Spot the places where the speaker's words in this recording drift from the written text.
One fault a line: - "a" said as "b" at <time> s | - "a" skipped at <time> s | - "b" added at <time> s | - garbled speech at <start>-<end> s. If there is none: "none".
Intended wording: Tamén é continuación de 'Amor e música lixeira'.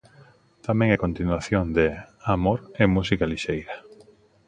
none